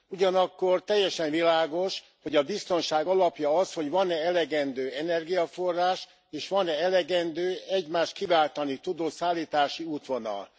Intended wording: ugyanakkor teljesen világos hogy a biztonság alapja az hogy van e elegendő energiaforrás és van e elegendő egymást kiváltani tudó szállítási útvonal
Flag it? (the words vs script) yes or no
no